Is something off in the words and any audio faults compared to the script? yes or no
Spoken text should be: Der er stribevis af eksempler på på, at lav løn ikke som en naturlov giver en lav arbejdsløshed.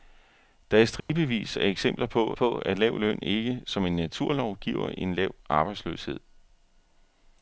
yes